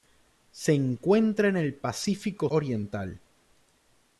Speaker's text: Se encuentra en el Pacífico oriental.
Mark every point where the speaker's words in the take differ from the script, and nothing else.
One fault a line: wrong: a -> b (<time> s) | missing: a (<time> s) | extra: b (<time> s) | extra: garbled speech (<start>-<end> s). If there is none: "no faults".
no faults